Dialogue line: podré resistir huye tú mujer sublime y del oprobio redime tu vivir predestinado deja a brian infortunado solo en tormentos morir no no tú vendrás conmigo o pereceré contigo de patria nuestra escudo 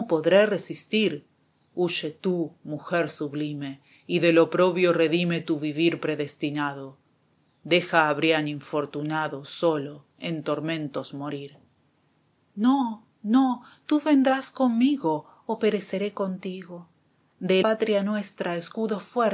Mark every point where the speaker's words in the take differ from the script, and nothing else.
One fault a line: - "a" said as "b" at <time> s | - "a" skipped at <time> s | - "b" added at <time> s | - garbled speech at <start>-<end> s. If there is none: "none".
none